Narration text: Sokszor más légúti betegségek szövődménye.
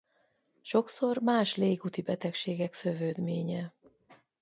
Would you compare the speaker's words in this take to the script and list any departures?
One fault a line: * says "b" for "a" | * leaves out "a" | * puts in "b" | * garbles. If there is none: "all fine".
all fine